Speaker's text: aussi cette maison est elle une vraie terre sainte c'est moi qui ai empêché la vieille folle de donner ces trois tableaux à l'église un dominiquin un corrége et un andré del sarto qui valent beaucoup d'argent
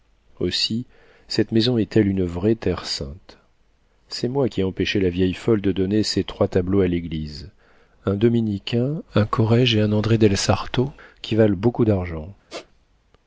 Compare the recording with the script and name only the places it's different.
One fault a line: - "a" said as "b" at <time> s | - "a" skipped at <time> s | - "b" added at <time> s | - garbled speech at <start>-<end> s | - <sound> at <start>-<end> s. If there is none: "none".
- squeak at 12.5-12.7 s